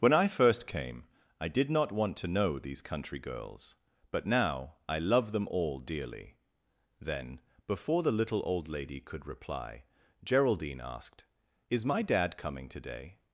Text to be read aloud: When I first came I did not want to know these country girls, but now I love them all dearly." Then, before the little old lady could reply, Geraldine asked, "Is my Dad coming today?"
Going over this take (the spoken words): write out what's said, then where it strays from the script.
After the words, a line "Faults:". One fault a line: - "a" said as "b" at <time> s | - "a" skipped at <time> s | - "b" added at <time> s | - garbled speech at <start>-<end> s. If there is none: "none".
When I first came I did not want to know these country girls, but now I love them all dearly." Then, before the little old lady could reply, Geraldine asked, "Is my Dad coming today?"
Faults:
none